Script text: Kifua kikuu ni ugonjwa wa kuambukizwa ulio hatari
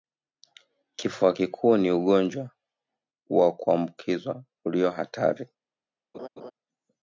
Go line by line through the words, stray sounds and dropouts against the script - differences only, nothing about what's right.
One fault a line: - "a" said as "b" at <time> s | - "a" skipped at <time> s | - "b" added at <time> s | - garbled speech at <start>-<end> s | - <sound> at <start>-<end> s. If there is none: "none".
- laugh at 6.1-6.5 s